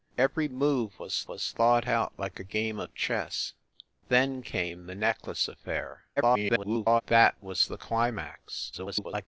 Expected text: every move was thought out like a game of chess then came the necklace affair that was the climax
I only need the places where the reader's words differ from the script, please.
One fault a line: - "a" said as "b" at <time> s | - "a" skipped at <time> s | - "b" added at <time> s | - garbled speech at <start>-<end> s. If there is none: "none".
- "was" added at 1.3 s
- garbled speech at 6.2-7.0 s
- garbled speech at 8.7-9.3 s